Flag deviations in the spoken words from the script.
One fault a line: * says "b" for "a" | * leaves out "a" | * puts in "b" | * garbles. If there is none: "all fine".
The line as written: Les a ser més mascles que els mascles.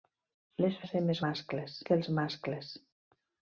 all fine